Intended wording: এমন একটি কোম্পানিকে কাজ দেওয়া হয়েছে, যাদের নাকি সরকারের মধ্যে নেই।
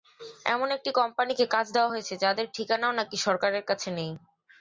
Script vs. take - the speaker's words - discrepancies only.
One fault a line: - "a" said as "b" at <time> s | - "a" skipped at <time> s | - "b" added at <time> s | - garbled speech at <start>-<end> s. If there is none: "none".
- "ঠিকানাও" added at 2.6 s
- "মধ্যে" said as "কাছে" at 3.7 s